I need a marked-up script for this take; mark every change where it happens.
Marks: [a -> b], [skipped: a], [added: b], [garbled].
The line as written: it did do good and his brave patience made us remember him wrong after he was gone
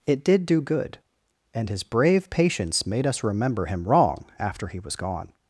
it did do good and his brave patience made us remember him wrong after he was gone